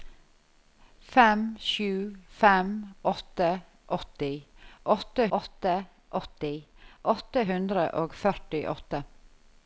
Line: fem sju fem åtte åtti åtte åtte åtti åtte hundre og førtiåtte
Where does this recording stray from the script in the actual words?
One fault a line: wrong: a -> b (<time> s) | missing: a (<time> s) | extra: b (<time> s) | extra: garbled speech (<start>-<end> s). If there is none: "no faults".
no faults